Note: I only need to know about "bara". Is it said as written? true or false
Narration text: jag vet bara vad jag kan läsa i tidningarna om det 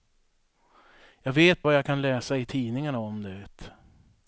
false